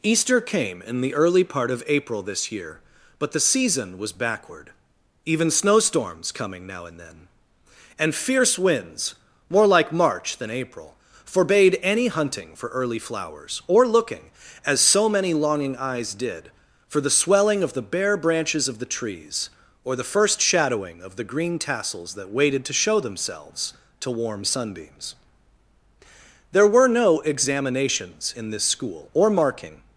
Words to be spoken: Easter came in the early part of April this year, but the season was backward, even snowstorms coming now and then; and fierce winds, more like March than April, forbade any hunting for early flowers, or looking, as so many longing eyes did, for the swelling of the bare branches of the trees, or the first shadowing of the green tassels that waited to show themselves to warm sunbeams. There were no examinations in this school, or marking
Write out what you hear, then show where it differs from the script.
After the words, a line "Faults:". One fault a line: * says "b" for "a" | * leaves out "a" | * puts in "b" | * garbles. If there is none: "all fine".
Easter came in the early part of April this year, but the season was backward, even snowstorms coming now and then; and fierce winds, more like March than April, forbade any hunting for early flowers, or looking, as so many longing eyes did, for the swelling of the bare branches of the trees, or the first shadowing of the green tassels that waited to show themselves to warm sunbeams. There were no examinations in this school, or marking
Faults:
all fine